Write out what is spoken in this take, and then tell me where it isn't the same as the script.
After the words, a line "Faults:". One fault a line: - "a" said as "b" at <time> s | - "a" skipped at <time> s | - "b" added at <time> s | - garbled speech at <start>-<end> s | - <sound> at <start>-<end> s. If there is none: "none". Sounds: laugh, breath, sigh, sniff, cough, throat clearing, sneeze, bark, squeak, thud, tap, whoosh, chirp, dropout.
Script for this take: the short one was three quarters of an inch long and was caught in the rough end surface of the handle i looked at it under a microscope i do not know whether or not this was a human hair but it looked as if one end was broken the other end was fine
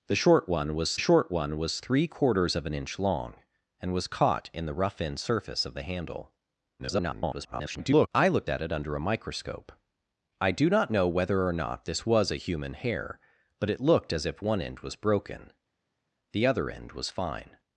the short one was short one was three quarters of an inch long and was caught in the rough end surface of the handle [garbled] i looked at it under a microscope i do not know whether or not this was a human hair but it looked as if one end was broken the other end was fine
Faults:
- "short one was" added at 1.0 s
- garbled speech at 6.8-8.1 s